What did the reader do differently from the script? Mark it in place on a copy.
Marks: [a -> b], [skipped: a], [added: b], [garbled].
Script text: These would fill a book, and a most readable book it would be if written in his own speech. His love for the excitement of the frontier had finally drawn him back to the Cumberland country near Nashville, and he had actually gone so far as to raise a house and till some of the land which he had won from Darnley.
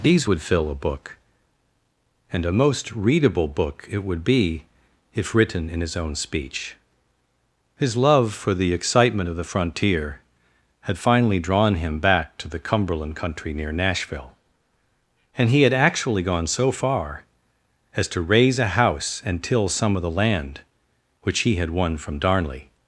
These would fill a book, and a most readable book it would be if written in his own speech. His love for the excitement of the frontier had finally drawn him back to the Cumberland country near Nashville, and he had actually gone so far as to raise a house and till some of the land which he had won from Darnley.